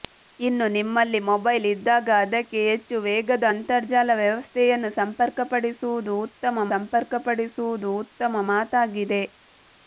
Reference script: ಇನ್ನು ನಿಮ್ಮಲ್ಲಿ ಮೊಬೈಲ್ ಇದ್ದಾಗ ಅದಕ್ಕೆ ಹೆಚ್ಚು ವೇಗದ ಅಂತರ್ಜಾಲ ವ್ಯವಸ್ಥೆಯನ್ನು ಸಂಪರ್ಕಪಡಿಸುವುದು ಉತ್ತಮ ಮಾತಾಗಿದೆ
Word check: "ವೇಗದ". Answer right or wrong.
right